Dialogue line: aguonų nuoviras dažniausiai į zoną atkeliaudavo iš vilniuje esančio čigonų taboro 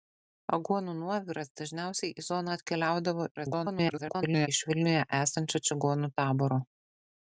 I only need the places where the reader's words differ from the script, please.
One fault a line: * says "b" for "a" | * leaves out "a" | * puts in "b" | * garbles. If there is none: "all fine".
* garbles